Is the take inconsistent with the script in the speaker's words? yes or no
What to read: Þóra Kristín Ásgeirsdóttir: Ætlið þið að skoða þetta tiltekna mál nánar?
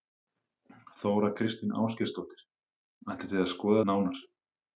yes